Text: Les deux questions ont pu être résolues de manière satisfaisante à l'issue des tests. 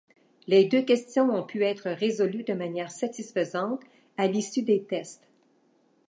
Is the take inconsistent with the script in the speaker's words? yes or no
no